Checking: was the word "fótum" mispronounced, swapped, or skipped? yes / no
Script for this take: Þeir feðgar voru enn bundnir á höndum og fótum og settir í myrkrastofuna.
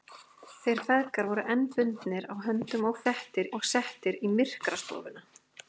yes